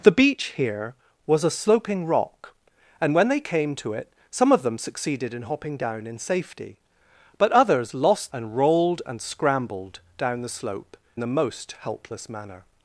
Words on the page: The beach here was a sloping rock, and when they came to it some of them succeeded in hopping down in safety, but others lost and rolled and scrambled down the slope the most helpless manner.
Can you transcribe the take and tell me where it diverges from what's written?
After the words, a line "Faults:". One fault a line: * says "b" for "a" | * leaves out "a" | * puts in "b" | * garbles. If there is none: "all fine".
The beach here was a sloping rock, and when they came to it some of them succeeded in hopping down in safety, but others lost and rolled and scrambled down the slope the most helpless manner.
Faults:
all fine